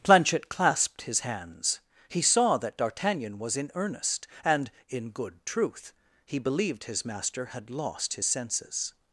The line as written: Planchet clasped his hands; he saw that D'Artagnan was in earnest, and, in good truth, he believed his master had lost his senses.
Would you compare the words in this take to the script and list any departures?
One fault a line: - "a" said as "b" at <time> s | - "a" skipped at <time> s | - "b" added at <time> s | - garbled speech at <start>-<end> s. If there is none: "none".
none